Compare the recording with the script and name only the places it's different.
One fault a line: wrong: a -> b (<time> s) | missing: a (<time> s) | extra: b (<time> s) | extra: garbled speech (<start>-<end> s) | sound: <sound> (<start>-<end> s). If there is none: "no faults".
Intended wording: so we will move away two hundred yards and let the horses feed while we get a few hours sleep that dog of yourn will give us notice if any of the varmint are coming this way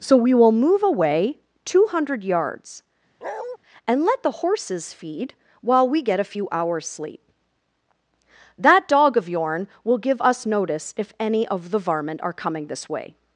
sound: bark (3.2-3.6 s)